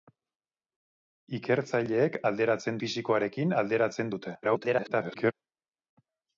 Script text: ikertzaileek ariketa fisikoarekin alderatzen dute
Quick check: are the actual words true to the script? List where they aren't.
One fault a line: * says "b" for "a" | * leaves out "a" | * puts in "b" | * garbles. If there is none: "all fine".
* says "alderatzen" for "ariketa"
* garbles